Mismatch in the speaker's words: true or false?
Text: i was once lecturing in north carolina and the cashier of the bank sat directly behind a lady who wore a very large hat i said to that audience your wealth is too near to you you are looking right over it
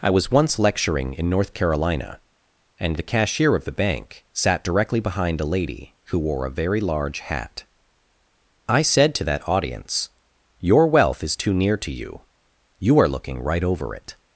false